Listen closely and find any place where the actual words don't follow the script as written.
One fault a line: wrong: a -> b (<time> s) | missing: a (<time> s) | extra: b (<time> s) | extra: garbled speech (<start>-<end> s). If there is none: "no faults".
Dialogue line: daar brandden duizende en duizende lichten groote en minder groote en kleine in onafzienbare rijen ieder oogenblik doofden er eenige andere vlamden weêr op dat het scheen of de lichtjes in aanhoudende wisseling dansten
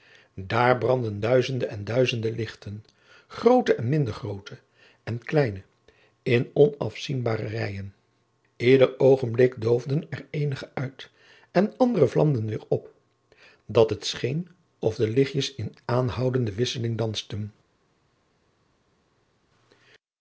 extra: uit en (10.7 s)